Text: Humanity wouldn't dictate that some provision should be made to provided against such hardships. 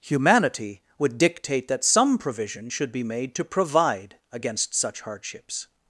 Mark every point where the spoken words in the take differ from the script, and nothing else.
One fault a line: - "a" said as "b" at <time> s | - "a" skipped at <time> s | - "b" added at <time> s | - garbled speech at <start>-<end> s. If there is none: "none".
- "wouldn't" said as "would" at 1.0 s
- "provided" said as "provide" at 3.5 s